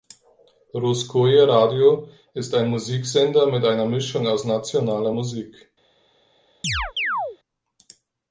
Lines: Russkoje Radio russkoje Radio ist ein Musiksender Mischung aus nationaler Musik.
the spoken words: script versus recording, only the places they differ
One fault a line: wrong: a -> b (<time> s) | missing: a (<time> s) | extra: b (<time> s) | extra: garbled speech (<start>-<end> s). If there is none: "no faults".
missing: russkoje Radio (2.1 s)
extra: mit einer (3.5 s)